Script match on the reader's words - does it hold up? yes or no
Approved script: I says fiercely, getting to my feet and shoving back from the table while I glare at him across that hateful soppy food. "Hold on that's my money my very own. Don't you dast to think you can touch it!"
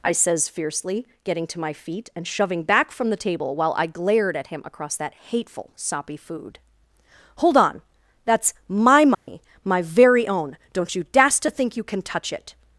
no